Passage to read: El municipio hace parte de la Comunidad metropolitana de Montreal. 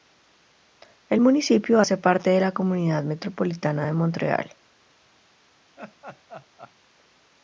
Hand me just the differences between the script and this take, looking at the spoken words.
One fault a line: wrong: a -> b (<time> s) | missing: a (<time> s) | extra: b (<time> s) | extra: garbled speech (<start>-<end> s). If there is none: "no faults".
no faults